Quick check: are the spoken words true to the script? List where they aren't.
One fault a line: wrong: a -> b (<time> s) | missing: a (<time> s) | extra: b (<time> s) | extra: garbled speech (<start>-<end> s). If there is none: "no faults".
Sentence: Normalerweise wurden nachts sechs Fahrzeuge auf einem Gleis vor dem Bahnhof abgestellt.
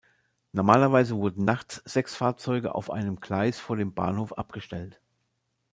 no faults